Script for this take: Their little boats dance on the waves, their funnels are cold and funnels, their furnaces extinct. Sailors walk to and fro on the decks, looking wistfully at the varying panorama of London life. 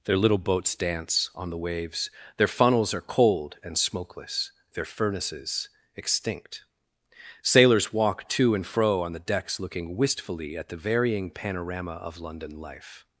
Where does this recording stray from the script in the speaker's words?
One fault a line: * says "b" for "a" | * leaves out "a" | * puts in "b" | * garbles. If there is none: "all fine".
* says "smokeless" for "funnels"